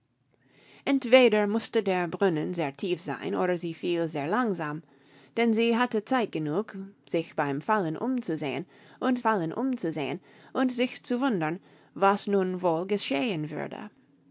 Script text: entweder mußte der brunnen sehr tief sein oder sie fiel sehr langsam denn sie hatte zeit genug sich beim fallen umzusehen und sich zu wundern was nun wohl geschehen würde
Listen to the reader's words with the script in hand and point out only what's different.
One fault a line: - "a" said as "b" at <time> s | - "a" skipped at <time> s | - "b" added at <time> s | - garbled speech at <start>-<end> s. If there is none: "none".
- "fallen umzusehen und" added at 9.2 s